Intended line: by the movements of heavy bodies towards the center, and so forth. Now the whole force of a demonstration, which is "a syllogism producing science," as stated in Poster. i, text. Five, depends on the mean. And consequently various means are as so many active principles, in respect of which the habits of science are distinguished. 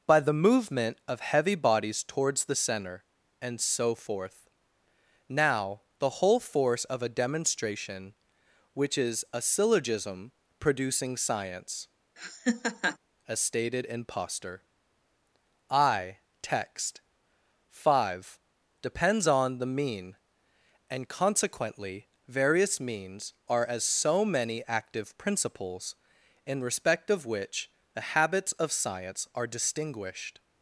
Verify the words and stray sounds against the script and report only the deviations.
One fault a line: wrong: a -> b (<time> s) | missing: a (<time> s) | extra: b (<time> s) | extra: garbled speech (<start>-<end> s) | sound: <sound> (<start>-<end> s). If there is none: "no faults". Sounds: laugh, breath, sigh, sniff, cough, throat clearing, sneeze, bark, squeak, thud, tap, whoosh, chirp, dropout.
wrong: movements -> movement (0.3 s)
sound: laugh (12.2-13.0 s)